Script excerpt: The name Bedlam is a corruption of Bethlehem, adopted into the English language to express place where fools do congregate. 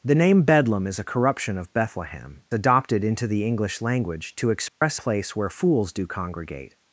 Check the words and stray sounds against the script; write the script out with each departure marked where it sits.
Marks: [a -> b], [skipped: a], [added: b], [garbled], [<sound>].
The name Bedlam is a corruption of Bethlehem, adopted into the English language to express [dropout] place where fools do congregate.